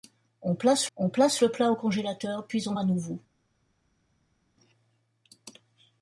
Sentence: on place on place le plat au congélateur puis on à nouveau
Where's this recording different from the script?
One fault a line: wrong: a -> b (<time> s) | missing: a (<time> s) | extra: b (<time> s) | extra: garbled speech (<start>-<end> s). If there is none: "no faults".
no faults